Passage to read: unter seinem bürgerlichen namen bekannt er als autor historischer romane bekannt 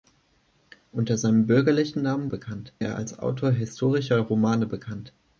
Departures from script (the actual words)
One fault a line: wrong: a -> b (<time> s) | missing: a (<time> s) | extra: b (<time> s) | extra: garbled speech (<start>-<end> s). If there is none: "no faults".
no faults